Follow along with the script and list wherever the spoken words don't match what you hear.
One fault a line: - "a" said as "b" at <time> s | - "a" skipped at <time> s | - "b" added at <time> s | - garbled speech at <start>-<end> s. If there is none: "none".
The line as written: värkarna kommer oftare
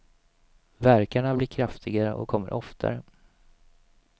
- "blir kraftigare och" added at 1.4 s